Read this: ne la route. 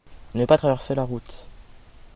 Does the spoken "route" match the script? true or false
true